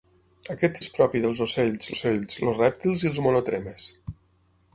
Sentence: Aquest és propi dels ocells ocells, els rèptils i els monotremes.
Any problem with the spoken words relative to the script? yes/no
no